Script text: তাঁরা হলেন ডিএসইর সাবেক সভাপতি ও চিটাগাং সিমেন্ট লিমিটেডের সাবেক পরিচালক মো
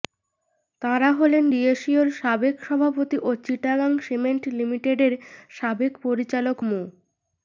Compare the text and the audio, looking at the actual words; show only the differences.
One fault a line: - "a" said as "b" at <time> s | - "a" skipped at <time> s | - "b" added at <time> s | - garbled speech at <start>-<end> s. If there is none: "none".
none